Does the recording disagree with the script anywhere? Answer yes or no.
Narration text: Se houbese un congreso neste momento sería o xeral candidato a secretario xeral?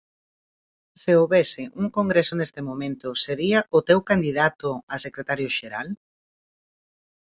yes